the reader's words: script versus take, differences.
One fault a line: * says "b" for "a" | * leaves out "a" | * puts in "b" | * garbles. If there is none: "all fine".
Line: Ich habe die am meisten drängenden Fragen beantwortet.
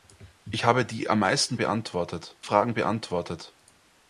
* says "beantwortet" for "drängenden"